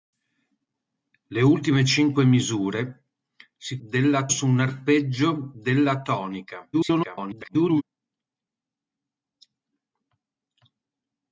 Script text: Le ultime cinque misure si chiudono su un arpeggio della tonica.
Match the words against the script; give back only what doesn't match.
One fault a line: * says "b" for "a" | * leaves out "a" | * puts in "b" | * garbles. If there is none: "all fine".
* says "della" for "chiudono"
* garbles